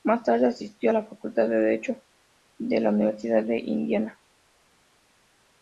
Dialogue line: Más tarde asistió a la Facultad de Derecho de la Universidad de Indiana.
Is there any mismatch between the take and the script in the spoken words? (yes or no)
no